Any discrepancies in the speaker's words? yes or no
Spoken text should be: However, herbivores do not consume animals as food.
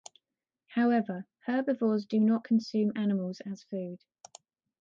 no